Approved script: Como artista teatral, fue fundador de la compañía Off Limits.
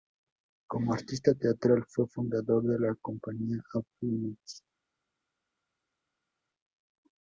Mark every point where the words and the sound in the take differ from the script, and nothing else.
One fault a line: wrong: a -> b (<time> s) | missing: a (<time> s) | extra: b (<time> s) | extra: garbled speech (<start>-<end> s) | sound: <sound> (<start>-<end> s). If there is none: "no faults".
no faults